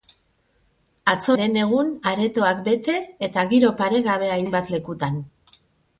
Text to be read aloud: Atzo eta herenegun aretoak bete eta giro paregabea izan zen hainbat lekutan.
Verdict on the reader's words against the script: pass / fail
fail